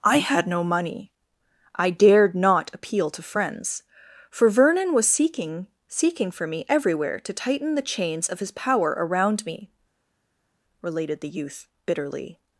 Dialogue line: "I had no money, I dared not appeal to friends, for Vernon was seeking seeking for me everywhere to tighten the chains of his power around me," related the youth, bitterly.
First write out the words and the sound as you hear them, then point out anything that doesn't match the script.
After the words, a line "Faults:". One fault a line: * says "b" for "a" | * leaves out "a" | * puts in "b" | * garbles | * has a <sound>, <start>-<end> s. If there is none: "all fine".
"I had no money, I dared not appeal to friends, for Vernon was seeking seeking for me everywhere to tighten the chains of his power around me," related the youth, bitterly.
Faults:
all fine